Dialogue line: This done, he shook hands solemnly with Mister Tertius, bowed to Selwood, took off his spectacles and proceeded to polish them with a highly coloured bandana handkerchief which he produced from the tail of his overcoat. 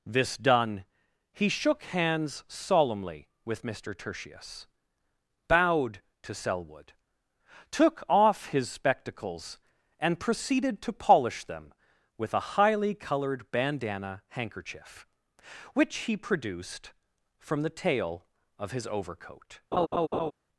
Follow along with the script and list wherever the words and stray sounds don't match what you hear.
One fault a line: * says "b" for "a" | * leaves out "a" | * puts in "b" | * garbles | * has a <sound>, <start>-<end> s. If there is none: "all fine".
* has a laugh, 19.7-20.3 s